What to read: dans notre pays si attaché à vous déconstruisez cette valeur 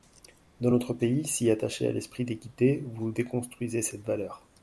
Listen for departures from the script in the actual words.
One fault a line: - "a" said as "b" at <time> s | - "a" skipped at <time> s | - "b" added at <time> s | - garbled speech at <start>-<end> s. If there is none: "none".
- "l'esprit d'équité" added at 1.9 s